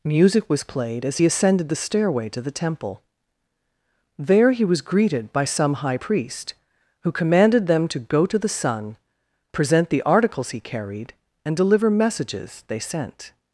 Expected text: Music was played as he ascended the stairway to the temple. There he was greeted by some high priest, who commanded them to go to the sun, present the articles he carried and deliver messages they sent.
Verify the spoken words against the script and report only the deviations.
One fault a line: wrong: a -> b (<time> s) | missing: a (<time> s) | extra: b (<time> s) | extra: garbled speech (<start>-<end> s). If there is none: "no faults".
no faults